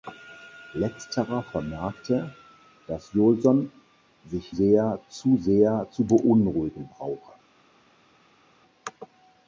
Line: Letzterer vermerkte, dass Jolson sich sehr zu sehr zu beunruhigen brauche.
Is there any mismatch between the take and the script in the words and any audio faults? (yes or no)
no